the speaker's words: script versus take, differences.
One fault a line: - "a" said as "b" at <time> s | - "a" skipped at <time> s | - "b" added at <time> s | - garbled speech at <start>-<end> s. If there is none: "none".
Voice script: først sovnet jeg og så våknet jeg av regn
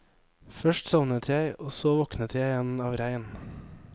- "igjen" added at 2.5 s